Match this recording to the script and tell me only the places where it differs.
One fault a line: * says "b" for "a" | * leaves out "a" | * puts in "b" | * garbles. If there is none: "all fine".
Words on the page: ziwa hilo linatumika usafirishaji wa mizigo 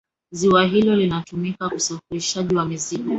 all fine